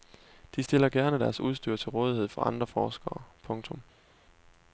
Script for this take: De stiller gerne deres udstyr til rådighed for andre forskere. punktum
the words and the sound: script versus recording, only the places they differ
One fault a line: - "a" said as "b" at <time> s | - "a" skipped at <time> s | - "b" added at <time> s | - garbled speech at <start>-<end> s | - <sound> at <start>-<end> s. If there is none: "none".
none